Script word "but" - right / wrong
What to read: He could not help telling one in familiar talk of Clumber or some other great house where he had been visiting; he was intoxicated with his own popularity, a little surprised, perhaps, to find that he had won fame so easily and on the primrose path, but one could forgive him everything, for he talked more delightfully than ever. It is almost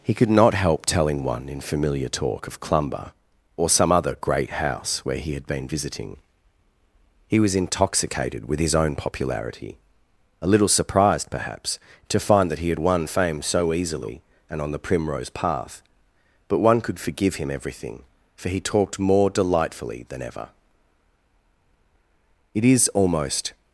right